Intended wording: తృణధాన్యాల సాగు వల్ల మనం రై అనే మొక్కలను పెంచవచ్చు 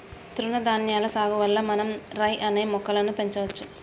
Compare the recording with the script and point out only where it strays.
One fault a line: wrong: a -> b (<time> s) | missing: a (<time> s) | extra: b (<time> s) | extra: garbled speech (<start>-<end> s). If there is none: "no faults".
no faults